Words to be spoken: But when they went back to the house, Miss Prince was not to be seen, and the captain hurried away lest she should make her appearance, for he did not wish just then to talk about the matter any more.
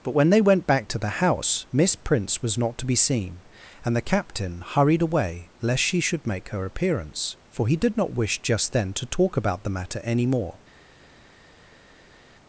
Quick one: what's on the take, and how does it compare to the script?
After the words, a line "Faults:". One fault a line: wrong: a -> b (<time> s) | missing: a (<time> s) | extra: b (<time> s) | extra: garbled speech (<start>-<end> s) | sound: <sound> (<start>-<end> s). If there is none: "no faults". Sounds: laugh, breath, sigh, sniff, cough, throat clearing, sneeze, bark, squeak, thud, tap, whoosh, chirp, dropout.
But when they went back to the house, Miss Prince was not to be seen, and the captain hurried away lest she should make her appearance, for he did not wish just then to talk about the matter any more.
Faults:
no faults